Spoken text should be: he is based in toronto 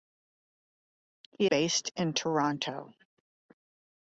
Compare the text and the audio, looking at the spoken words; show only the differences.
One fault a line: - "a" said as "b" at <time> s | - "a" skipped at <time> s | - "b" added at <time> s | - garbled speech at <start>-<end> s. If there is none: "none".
- "is" skipped at 1.5 s